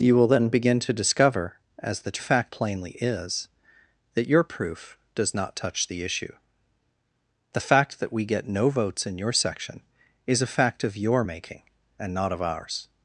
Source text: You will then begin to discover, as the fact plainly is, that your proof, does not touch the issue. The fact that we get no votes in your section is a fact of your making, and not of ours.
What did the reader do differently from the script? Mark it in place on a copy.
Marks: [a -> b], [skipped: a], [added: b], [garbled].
You will then begin to discover, as the fact plainly is, that your proof, does not touch the issue. The fact that we get no votes in your section is a fact of your making, and not of ours.